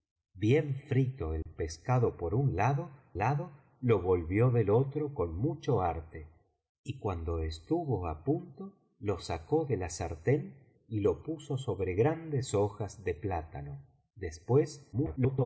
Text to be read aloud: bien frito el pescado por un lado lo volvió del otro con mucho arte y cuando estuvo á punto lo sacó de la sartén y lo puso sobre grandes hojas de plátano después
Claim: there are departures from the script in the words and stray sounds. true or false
true